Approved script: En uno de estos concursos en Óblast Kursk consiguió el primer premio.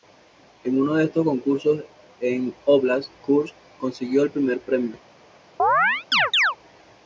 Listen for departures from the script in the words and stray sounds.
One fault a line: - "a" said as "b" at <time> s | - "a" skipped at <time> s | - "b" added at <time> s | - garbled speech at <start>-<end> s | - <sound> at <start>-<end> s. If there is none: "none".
- chirp at 5.6-6.6 s